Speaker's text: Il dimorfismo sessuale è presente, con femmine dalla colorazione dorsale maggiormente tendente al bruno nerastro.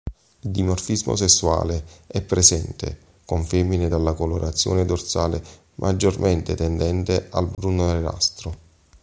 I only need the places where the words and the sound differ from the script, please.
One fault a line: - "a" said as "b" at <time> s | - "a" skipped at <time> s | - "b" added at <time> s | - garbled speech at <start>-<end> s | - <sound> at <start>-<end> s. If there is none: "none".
- dropout at 7.5-7.6 s